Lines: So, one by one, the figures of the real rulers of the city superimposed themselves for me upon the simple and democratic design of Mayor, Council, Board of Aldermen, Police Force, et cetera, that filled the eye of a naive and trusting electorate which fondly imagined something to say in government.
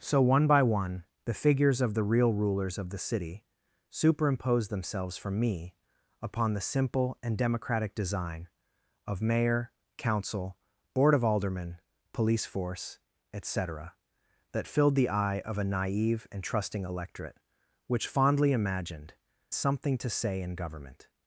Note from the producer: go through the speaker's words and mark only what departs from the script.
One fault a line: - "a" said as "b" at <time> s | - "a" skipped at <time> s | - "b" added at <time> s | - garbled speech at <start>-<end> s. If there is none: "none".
none